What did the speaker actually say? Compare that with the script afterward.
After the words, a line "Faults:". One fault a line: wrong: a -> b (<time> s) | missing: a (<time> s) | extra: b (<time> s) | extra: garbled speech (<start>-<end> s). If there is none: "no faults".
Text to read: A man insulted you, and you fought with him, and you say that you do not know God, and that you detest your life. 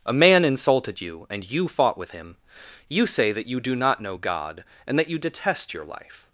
A man insulted you, and you fought with him, you say that you do not know God, and that you detest your life.
Faults:
missing: and (2.4 s)